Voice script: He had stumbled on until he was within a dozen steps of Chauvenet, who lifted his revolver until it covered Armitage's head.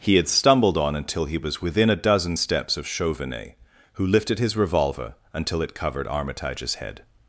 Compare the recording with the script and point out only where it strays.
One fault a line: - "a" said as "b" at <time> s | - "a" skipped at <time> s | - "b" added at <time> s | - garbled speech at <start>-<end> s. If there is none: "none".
none